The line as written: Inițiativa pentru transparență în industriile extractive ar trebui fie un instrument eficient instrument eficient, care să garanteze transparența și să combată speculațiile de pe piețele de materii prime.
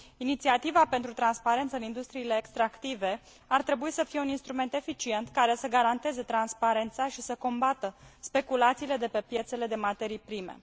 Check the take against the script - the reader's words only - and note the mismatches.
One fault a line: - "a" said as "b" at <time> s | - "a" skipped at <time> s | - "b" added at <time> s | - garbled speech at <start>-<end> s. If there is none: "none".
- "să" added at 3.9 s
- "instrument eficient" skipped at 5.3 s